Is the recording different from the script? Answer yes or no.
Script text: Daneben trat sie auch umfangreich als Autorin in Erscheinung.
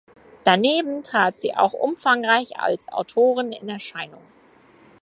no